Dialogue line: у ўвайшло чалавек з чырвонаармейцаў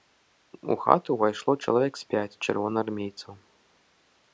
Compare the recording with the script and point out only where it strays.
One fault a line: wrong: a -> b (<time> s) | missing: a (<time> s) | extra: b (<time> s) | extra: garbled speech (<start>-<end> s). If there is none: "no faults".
extra: хату (0.8 s)
extra: пяць (2.2 s)